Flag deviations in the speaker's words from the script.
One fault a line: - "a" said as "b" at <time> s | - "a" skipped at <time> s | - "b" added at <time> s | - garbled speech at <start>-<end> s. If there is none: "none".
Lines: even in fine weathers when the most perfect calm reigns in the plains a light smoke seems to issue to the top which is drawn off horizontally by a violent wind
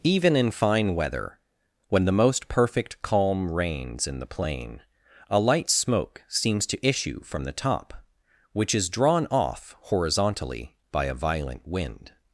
- "weathers" said as "weather" at 0.9 s
- "plains" said as "plain" at 4.3 s
- "to" said as "from" at 7.2 s